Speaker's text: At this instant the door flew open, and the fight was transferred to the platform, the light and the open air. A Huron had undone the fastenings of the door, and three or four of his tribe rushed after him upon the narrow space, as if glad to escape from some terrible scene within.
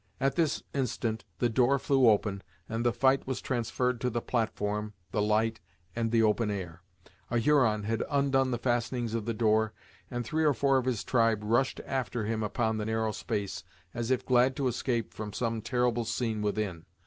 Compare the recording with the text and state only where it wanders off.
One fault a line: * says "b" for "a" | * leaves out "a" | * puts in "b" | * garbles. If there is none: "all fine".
all fine